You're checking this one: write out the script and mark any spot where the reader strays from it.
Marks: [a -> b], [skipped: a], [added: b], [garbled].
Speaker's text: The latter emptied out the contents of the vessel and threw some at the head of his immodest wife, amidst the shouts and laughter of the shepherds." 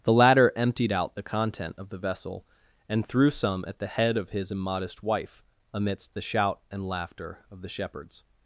The latter emptied out the [contents -> content] of the vessel and threw some at the head of his immodest wife, amidst the [shouts -> shout] and laughter of the shepherds."